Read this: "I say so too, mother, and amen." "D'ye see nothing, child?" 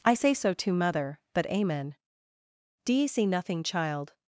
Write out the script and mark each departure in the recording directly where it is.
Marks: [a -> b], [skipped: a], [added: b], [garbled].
"I say so too, mother, [and -> but] amen." "D'ye see nothing, child?"